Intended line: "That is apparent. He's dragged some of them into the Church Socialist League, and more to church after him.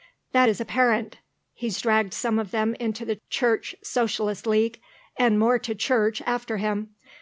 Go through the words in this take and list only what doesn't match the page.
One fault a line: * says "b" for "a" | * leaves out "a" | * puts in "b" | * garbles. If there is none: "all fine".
all fine